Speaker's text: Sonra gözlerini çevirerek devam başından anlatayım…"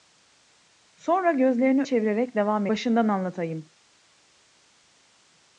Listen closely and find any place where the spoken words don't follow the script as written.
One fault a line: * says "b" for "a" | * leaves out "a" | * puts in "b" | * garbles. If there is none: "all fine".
all fine